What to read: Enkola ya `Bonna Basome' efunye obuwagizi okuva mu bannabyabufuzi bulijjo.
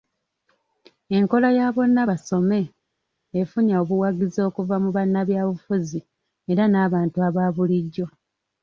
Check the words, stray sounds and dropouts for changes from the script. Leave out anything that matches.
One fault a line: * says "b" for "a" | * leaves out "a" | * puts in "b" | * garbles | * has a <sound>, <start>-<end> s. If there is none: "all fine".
* puts in "era nabantu aba"